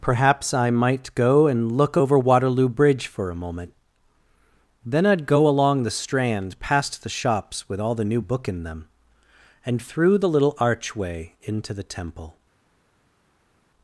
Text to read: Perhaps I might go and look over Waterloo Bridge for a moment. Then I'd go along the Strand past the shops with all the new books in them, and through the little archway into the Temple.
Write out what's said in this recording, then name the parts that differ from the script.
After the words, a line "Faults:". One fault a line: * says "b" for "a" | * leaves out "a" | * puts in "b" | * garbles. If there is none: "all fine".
Perhaps I might go and look over Waterloo Bridge for a moment. Then I'd go along the Strand past the shops with all the new book in them, and through the little archway into the Temple.
Faults:
* says "book" for "books"